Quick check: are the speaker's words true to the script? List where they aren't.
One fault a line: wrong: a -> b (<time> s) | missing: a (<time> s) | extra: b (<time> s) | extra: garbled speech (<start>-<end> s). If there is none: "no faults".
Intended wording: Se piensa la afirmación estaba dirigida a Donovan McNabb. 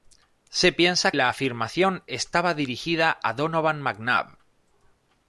no faults